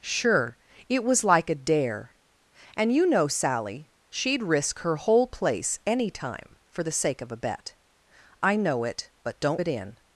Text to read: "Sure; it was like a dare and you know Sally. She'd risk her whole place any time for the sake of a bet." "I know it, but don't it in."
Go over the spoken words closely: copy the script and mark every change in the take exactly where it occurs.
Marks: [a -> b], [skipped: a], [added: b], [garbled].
"Sure; it was like a dare and you know Sally. She'd risk her whole place any time for the sake of a bet." "I know it, but don't it in."